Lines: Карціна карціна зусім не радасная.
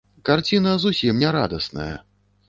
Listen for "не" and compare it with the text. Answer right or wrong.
right